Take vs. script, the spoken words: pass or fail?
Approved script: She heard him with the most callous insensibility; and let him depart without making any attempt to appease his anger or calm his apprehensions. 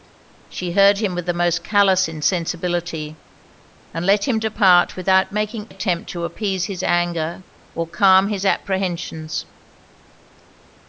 fail